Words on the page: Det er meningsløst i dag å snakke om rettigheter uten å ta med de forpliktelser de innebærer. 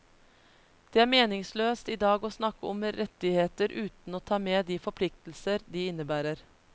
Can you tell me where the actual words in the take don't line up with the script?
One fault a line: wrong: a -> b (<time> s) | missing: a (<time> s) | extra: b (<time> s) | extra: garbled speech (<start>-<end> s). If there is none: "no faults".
no faults